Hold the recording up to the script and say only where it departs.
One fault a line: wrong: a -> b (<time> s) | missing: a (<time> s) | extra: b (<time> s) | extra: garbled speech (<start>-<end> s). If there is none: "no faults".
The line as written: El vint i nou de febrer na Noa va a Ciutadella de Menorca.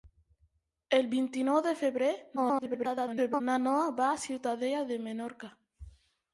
extra: garbled speech (2.4-3.4 s)